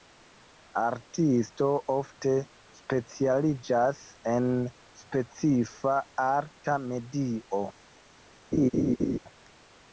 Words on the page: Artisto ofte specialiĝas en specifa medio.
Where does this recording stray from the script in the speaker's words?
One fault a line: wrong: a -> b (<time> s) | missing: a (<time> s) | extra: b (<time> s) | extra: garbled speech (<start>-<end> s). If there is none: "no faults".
extra: arta (6.2 s)